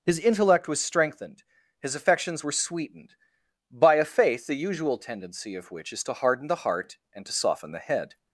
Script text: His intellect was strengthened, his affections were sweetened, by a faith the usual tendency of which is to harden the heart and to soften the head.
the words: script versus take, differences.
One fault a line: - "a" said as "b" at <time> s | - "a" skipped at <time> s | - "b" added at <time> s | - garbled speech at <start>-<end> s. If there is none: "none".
none